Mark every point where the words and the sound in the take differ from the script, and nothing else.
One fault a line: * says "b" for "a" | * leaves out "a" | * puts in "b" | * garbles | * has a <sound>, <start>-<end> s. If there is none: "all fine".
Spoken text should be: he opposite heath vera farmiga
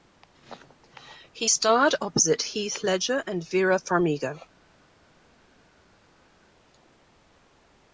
* puts in "starred"
* puts in "ledger and"